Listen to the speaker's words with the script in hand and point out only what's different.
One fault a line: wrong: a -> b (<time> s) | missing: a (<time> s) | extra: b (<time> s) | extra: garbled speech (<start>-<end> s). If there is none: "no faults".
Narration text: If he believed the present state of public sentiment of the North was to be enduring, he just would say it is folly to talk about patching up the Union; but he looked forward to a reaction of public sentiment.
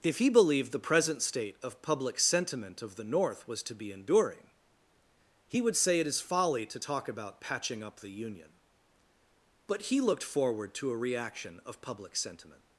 missing: just (5.6 s)